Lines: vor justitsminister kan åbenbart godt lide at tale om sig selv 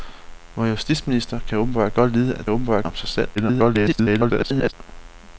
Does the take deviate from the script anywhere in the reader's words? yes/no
yes